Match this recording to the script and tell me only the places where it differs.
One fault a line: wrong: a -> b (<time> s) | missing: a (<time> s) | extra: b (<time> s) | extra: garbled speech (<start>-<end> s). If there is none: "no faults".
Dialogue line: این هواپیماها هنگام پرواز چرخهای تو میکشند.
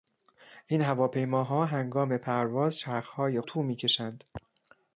no faults